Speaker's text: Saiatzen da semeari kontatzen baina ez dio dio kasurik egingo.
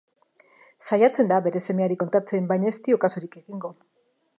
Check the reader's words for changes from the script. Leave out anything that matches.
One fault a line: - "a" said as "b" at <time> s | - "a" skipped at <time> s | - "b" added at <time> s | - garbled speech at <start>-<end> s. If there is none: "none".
- "bere" added at 1.5 s
- "dio" skipped at 3.0 s